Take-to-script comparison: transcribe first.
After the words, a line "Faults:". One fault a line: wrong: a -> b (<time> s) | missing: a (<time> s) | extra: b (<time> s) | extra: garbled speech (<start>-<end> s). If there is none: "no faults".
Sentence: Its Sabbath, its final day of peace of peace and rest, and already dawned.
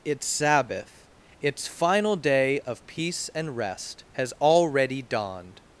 Its Sabbath, its final day of peace and rest, has already dawned.
Faults:
missing: of peace (3.3 s)
wrong: and -> has (4.1 s)